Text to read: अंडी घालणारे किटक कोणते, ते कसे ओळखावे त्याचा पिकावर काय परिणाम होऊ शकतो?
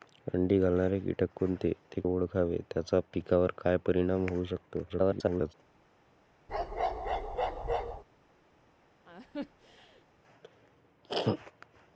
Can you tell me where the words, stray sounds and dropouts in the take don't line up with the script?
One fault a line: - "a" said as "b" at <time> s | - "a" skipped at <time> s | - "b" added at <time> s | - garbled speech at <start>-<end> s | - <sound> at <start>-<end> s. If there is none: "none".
- "कसे" skipped at 2.0 s
- garbled speech at 4.9-5.5 s
- bark at 6.5-8.0 s
- laugh at 9.0-10.1 s